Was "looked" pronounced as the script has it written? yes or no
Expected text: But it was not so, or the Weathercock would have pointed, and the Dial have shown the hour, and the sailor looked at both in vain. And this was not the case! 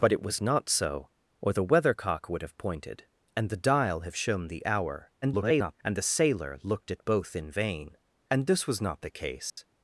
yes